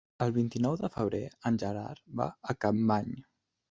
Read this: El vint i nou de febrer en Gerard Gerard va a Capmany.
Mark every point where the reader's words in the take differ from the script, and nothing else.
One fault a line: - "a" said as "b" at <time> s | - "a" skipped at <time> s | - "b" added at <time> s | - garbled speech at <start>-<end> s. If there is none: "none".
- "Gerard" skipped at 2.0 s